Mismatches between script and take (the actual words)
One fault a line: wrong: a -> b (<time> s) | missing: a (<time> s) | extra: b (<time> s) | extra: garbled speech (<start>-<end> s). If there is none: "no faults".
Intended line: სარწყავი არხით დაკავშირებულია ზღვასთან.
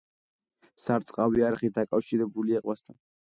no faults